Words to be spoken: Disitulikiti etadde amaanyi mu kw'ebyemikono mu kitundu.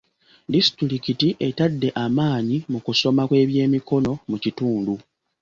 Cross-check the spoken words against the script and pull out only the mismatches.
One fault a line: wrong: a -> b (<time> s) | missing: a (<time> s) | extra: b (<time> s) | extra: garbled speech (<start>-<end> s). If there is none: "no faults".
extra: kusoma (2.9 s)